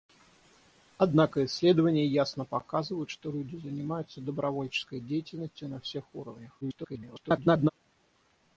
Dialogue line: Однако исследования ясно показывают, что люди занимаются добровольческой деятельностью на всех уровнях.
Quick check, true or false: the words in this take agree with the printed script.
false